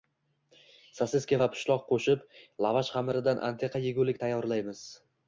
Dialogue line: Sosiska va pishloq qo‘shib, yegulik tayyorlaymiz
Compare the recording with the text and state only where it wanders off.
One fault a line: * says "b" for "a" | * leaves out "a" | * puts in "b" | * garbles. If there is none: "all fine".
* puts in "lavash xamiridan antiqa"